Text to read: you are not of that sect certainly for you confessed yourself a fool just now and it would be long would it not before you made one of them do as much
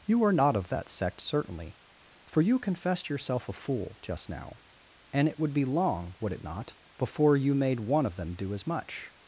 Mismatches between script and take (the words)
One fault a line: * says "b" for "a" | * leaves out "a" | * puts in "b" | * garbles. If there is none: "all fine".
all fine